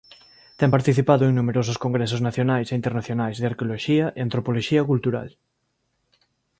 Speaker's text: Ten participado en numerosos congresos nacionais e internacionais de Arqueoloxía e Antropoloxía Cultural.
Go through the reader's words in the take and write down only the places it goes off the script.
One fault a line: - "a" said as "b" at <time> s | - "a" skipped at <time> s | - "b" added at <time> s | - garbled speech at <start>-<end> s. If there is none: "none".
none